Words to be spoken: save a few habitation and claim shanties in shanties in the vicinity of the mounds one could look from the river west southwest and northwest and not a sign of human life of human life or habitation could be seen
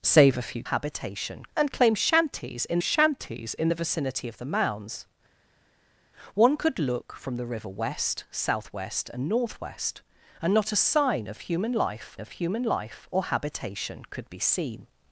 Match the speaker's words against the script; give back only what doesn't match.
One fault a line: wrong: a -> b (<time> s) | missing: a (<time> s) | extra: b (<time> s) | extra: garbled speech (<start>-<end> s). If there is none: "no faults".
no faults